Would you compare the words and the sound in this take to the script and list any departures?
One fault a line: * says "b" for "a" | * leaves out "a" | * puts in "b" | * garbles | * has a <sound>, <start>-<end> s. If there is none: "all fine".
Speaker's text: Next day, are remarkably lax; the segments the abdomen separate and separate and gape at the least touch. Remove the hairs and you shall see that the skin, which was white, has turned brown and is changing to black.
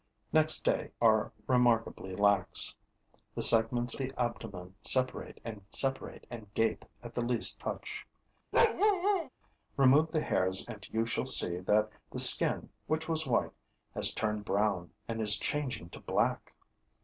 * has a bark, 8.5-9.3 s